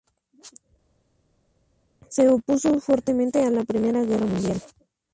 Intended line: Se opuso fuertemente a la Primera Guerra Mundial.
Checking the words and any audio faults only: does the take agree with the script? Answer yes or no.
yes